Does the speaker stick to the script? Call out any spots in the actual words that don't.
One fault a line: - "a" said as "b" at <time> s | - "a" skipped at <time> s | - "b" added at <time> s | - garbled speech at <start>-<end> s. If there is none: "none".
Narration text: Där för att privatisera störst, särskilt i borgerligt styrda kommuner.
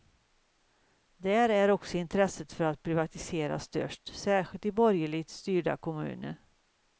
- "är också intresset" added at 1.5 s